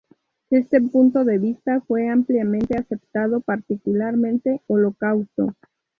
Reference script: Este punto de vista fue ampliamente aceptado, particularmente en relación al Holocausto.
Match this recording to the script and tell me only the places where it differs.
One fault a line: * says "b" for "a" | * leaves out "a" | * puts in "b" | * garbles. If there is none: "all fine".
* leaves out "en relación al"